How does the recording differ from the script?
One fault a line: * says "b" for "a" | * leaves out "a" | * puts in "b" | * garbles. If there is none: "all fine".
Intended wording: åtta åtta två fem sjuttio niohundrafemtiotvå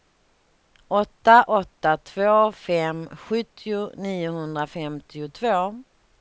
all fine